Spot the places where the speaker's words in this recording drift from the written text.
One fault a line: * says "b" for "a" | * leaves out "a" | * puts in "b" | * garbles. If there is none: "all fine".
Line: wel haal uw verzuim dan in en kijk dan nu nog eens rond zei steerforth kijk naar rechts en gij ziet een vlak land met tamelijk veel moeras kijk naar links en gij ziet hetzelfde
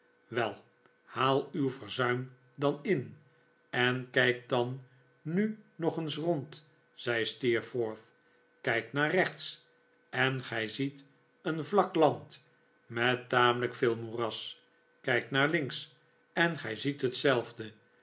all fine